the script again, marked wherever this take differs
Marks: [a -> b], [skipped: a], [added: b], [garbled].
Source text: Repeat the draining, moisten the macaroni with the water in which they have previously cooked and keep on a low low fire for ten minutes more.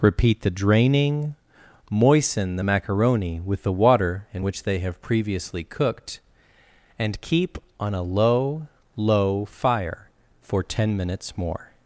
Repeat the draining, moisten the macaroni with the water in which they have previously cooked and keep on a low low fire for ten minutes more.